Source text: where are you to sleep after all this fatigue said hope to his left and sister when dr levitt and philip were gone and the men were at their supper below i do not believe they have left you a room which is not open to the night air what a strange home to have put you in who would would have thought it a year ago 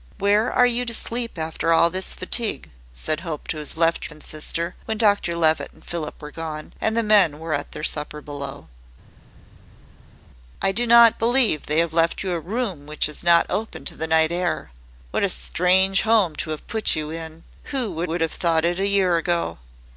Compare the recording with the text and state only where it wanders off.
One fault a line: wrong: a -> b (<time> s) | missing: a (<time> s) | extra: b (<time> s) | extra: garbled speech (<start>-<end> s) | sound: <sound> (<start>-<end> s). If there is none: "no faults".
no faults